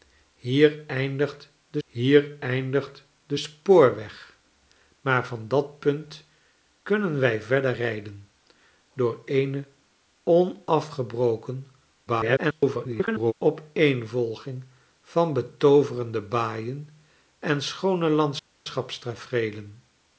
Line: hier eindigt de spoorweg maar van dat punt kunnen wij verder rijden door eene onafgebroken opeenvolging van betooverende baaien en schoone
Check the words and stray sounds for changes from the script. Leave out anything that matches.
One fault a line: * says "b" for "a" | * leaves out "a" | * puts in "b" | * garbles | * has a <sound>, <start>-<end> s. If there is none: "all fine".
* puts in "hier eindigt de"
* garbles